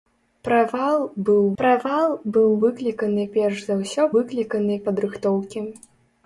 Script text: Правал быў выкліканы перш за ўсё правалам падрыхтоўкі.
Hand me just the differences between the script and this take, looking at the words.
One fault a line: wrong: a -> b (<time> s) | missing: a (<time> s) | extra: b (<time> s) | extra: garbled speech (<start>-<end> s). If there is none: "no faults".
extra: правал быў (1.6 s)
wrong: правалам -> выкліканы (4.2 s)